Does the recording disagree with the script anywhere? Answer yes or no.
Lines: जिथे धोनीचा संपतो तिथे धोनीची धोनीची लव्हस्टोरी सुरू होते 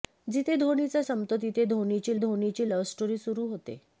no